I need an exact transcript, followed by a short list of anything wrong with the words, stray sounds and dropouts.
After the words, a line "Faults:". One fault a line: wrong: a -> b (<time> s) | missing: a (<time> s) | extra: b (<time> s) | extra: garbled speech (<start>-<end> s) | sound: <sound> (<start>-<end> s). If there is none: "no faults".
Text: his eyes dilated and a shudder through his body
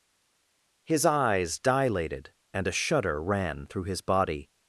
his eyes dilated and a shudder ran through his body
Faults:
extra: ran (3.2 s)